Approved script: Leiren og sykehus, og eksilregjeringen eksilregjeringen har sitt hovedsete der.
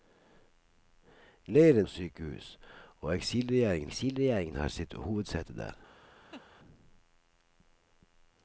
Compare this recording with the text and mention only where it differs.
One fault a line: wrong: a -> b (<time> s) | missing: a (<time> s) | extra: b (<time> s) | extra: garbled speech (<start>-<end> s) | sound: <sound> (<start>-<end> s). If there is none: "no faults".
sound: laugh (6.3-6.4 s)